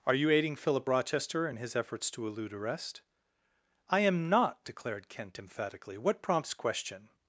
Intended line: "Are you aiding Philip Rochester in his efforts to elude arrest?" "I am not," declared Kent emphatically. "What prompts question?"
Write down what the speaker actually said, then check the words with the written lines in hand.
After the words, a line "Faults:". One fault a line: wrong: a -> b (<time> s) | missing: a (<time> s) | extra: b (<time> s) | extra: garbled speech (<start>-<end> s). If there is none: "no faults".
"Are you aiding Philip Rochester in his efforts to elude arrest?" "I am not," declared Kent emphatically. "What prompts question?"
Faults:
no faults